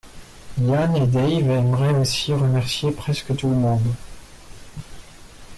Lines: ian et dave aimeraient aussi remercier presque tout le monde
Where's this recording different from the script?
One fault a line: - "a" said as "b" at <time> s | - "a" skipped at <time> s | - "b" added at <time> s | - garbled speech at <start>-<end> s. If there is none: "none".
none